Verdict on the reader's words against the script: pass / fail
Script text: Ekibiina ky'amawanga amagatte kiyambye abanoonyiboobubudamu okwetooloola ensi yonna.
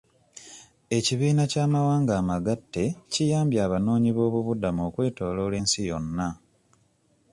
pass